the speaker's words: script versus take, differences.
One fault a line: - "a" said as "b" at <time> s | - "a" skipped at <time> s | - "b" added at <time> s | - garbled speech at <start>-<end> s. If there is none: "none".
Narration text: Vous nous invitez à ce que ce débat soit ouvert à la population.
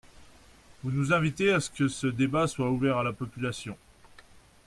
none